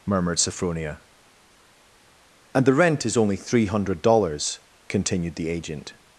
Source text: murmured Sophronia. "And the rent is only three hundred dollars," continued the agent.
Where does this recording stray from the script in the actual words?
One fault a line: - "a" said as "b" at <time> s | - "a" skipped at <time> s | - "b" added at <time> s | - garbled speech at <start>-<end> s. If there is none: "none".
none